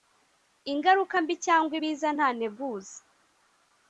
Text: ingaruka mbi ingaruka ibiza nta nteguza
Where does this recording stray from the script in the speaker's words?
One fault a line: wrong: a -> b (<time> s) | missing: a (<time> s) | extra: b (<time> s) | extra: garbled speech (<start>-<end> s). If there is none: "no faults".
wrong: ingaruka -> cyangwa (1.4 s)